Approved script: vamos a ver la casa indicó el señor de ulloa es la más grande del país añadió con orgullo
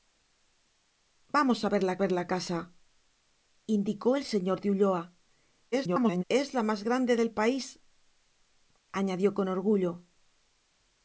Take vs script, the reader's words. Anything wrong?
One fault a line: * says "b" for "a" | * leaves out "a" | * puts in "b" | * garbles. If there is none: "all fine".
* puts in "ver la"
* garbles